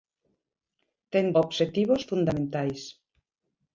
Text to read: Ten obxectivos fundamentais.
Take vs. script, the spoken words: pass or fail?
pass